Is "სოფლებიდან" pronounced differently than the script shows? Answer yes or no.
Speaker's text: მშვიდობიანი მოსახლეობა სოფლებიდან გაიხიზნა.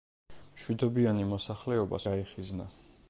yes